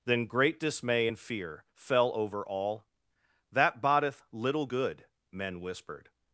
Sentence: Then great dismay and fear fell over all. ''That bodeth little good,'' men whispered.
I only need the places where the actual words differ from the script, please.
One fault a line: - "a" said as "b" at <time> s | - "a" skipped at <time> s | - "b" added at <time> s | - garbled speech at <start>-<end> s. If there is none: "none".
none